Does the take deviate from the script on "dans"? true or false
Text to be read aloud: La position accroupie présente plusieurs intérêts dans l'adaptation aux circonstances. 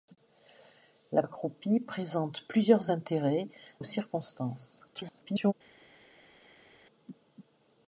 true